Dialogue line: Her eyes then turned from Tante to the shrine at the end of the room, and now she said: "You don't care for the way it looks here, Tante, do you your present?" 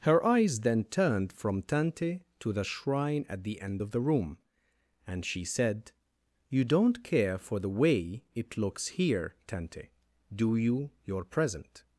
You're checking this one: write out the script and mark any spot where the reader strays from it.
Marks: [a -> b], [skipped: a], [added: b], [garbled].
Her eyes then turned from Tante to the shrine at the end of the room, and [skipped: now] she said: "You don't care for the way it looks here, Tante, do you your present?"